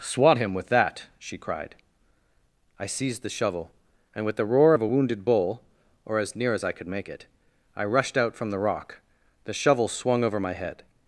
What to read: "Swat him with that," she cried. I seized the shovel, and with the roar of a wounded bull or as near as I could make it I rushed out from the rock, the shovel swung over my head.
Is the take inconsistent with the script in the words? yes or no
no